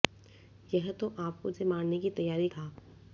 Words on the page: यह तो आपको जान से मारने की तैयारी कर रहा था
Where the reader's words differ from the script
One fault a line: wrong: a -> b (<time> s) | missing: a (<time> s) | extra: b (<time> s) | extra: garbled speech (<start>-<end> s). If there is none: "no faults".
missing: जान (1.5 s)
missing: कर रहा (2.5 s)